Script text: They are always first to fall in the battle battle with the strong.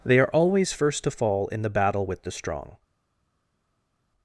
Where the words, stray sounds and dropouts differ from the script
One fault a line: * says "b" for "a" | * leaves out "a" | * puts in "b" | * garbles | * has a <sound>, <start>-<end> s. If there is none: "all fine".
* leaves out "battle"